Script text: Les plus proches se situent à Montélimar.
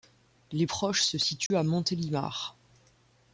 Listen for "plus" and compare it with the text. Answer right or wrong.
wrong